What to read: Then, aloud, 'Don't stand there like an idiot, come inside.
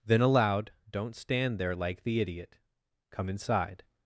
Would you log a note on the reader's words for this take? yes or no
yes